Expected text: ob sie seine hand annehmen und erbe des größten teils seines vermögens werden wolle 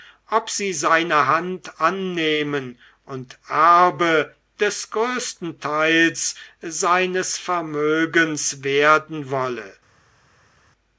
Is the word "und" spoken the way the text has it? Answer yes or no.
yes